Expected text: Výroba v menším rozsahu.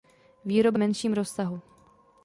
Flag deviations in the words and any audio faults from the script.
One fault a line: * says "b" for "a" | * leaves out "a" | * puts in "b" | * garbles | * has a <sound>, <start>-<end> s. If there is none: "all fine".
all fine